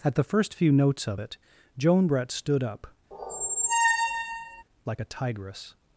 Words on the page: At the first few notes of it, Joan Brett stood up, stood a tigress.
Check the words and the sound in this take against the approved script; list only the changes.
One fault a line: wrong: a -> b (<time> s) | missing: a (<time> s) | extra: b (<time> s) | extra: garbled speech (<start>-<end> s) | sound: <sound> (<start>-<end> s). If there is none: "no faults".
sound: squeak (3.1-4.6 s)
wrong: stood -> like (4.8 s)